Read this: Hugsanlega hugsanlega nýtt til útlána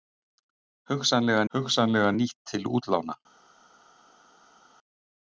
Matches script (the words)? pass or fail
pass